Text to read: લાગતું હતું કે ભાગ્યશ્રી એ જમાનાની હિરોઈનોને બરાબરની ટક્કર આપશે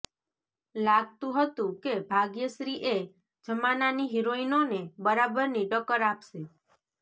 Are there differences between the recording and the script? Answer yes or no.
no